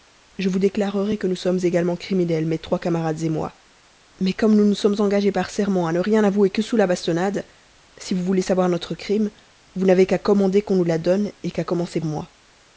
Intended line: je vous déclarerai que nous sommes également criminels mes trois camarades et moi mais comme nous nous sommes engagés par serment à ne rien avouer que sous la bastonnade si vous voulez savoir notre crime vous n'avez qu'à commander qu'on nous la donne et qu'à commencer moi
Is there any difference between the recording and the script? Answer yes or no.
no